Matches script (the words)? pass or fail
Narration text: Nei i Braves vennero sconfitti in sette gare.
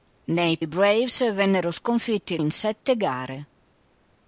pass